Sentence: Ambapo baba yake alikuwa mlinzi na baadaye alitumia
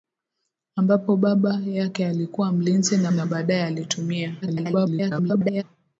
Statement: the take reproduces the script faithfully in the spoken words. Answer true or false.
false